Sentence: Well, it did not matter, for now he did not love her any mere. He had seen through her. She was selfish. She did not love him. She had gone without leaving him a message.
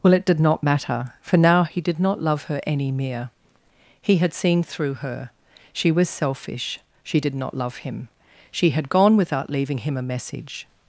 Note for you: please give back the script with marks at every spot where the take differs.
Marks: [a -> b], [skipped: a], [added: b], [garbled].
Well, it did not matter, for now he did not love her any mere. He had seen through her. She was selfish. She did not love him. She had gone without leaving him a message.